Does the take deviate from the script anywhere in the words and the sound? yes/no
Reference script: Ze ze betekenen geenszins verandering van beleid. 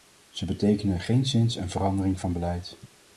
yes